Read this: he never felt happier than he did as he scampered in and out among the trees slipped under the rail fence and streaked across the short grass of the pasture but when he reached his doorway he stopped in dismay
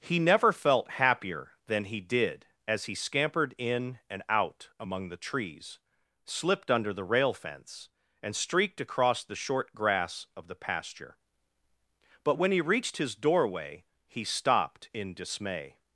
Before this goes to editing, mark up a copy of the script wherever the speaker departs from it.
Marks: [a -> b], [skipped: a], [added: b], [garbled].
he never felt happier than he did as he scampered in and out among the trees slipped under the rail fence and streaked across the short grass of the pasture but when he reached his doorway he stopped in dismay